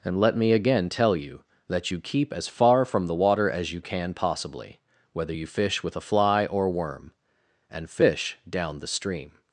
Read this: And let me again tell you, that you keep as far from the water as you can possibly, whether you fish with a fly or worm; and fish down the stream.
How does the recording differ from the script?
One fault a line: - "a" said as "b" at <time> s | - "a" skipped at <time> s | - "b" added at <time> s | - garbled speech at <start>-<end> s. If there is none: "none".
none